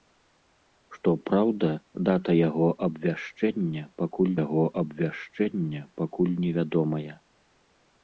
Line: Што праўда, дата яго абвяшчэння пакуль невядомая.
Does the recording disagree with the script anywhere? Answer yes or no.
yes